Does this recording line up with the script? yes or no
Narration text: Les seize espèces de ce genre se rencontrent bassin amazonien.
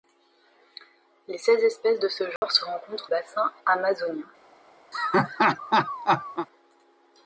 yes